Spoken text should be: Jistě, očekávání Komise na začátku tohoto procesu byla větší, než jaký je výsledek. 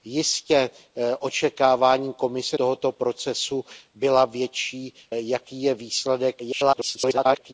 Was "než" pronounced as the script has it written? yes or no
no